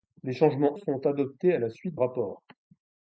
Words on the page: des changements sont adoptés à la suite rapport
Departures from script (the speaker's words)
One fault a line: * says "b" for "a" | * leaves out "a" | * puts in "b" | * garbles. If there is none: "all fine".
all fine